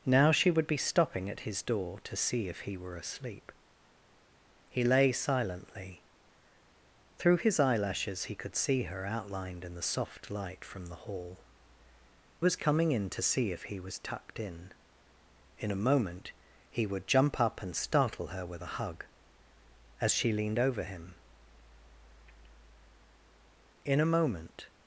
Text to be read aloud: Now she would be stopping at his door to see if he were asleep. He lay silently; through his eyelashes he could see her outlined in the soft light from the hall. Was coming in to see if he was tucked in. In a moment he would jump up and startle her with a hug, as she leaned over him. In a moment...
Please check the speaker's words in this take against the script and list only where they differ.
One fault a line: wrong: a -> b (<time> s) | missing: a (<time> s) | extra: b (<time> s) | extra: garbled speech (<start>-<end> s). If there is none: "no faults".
no faults